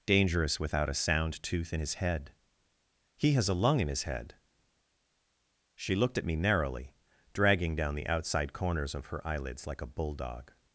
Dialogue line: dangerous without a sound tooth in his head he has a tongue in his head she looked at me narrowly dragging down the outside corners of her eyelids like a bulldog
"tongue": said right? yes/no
no